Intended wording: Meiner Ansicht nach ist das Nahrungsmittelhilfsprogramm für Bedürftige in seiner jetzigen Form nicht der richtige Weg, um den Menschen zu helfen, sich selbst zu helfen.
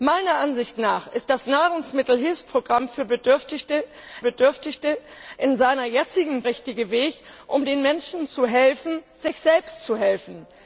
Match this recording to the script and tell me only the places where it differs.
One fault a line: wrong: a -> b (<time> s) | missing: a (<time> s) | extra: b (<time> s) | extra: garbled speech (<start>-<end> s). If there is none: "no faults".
extra: Bedürftige (4.2 s)
missing: Form nicht der (6.4 s)